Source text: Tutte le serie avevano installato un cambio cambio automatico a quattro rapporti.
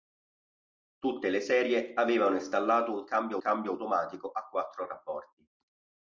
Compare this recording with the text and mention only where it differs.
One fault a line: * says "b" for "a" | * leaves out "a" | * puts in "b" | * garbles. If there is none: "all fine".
all fine